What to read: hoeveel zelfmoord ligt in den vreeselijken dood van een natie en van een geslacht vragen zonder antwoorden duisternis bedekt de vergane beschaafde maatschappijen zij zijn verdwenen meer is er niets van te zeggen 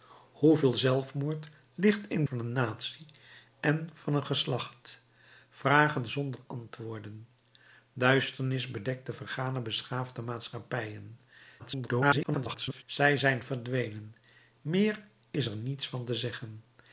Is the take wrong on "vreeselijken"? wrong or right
wrong